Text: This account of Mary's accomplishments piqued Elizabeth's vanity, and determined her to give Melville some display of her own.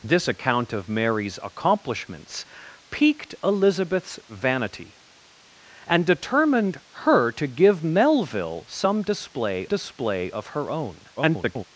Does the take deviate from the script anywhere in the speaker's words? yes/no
yes